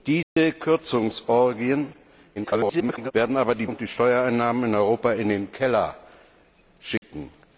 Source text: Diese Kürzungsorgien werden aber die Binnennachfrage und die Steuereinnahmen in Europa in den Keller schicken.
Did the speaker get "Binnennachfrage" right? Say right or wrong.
wrong